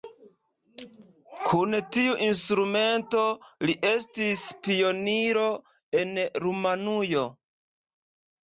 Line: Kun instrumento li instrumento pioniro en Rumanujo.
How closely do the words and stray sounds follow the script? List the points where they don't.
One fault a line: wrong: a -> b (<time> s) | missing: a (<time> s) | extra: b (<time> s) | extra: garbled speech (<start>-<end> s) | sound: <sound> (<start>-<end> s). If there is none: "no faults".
extra: tiu (2.0 s)
wrong: instrumento -> estis (3.9 s)